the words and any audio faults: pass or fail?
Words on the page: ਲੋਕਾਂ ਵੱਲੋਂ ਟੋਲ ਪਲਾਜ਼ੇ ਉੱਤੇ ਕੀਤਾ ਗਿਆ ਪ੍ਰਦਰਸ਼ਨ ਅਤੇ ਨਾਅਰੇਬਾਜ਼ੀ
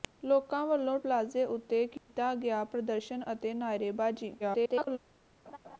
fail